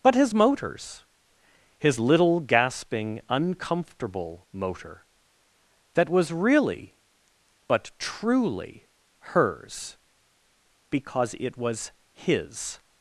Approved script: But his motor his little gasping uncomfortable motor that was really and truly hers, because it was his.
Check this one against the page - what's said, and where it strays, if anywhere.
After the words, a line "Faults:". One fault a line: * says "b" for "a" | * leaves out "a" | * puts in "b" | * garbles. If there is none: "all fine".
But his motors his little gasping uncomfortable motor that was really but truly hers, because it was his.
Faults:
* says "motors" for "motor"
* says "but" for "and"